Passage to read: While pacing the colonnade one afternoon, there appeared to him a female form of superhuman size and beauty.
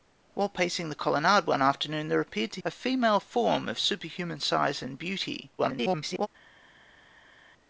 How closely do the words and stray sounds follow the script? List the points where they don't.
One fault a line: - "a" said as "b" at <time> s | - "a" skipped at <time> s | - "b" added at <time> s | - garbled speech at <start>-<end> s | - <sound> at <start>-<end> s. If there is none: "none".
- "him" skipped at 2.6 s
- garbled speech at 5.6-6.3 s